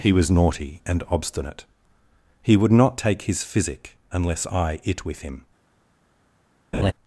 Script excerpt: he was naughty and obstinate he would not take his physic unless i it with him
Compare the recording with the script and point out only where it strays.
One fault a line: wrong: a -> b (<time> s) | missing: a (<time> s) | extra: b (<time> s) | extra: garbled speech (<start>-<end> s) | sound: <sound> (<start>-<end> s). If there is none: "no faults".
sound: laugh (6.7-6.9 s)